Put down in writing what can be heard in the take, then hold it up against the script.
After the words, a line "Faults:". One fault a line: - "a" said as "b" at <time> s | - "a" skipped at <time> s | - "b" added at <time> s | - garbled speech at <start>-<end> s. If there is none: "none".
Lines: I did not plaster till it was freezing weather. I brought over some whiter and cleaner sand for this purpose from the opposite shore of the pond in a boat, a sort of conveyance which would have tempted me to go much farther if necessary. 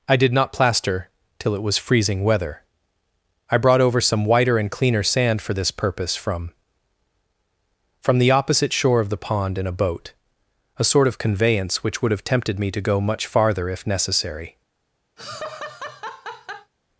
I did not plaster till it was freezing weather. I brought over some whiter and cleaner sand for this purpose from from the opposite shore of the pond in a boat, a sort of conveyance which would have tempted me to go much farther if necessary.
Faults:
- "from" added at 8.0 s